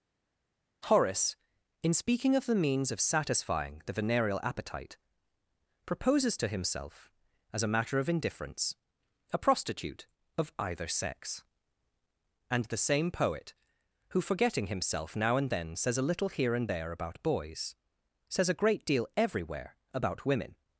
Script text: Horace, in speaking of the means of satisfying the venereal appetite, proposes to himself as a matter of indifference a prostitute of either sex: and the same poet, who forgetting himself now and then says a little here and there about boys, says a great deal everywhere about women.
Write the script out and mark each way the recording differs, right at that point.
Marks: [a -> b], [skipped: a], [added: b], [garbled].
Horace, in speaking of the means of satisfying the venereal appetite, proposes to himself as a matter of indifference a prostitute of either sex: and the same poet, who forgetting himself now and then says a little here and there about boys, says a great deal everywhere about women.